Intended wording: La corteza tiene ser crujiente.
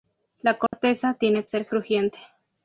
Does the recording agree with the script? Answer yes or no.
yes